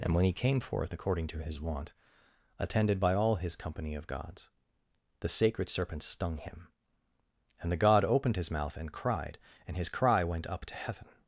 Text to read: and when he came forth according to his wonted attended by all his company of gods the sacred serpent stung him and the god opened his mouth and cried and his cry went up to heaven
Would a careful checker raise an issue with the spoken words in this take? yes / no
yes